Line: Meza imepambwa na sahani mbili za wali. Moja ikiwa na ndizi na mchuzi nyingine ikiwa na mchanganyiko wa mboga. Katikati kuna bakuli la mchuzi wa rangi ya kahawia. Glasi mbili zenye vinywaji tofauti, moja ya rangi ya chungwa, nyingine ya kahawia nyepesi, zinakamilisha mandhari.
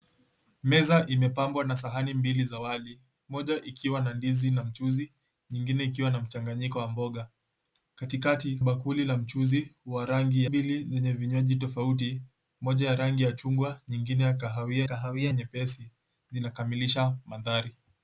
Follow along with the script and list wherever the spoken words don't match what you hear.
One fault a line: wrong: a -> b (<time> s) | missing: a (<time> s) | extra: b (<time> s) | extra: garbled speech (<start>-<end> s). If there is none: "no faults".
missing: kuna (8.6 s)
missing: ya kahawia Glasi (10.4 s)
extra: kahawia (14.8 s)